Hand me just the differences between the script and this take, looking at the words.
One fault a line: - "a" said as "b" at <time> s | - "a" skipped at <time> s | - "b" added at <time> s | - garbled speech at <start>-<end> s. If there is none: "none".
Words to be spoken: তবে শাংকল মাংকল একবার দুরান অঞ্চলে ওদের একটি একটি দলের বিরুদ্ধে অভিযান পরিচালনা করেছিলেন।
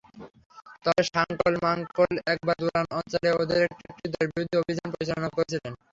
none